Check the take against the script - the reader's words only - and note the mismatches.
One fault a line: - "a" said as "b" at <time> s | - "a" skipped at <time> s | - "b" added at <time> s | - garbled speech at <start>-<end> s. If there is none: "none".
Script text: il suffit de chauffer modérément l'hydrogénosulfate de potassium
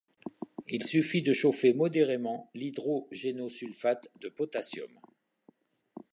none